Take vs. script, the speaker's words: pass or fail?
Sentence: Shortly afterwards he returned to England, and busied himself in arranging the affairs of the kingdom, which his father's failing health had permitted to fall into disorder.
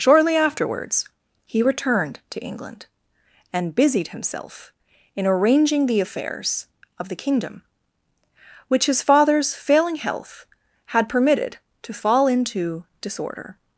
pass